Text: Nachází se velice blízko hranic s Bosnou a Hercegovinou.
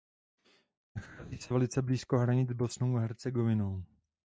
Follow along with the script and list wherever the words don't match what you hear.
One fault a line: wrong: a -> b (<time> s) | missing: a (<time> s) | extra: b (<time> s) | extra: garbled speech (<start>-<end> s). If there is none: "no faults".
no faults